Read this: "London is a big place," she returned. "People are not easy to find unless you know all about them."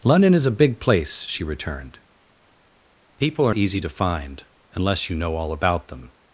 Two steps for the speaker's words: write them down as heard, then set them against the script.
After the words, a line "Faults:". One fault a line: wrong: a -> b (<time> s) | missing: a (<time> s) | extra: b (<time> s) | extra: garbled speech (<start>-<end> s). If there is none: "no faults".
"London is a big place," she returned. "People are easy to find unless you know all about them."
Faults:
missing: not (3.5 s)